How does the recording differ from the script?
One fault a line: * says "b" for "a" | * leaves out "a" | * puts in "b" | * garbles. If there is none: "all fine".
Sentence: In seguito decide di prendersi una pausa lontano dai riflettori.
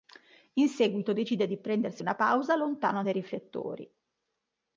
all fine